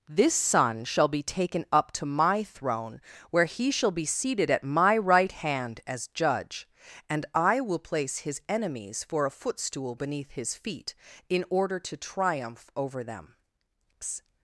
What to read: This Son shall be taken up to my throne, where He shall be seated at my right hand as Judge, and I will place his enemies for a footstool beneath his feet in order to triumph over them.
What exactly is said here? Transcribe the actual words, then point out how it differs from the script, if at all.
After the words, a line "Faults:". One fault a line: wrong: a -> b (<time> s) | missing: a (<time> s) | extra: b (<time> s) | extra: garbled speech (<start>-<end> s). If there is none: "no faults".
This Son shall be taken up to my throne, where He shall be seated at my right hand as Judge, and I will place his enemies for a footstool beneath his feet in order to triumph over them.
Faults:
no faults